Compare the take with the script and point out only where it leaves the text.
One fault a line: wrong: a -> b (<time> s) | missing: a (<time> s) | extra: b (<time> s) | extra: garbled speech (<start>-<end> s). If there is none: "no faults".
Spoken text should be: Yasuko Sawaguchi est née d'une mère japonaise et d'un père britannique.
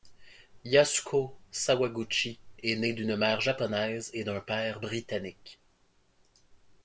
no faults